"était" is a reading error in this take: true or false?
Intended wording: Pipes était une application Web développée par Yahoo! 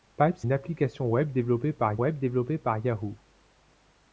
true